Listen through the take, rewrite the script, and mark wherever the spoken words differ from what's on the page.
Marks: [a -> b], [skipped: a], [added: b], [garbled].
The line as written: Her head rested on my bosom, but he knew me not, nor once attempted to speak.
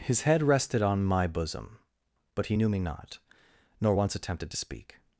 [Her -> His] head rested on my bosom, but he knew me not, nor once attempted to speak.